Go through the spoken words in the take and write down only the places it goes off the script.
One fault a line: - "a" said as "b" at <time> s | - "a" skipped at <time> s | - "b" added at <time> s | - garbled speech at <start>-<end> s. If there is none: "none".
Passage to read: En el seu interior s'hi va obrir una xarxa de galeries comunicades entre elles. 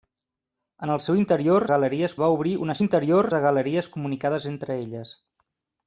- "s'hi" said as "galeries" at 1.7 s
- "xarxa" said as "interior" at 2.8 s